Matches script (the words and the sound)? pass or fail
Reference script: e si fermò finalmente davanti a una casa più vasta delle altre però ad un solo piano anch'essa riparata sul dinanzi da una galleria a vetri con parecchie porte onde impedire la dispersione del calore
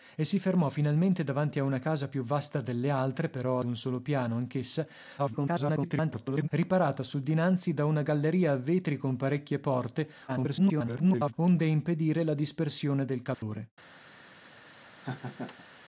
fail